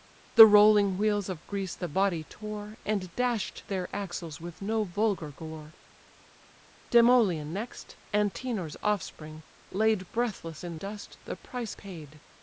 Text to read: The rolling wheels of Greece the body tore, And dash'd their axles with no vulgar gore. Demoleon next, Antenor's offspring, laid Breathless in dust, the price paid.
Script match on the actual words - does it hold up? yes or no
yes